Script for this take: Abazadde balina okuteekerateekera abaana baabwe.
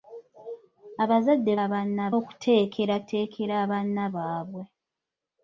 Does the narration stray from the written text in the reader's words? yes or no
yes